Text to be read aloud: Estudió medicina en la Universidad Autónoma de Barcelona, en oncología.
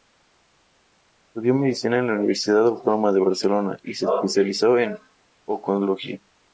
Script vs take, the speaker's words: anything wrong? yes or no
yes